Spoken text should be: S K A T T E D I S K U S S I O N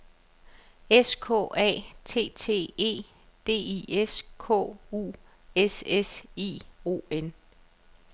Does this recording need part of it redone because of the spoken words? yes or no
no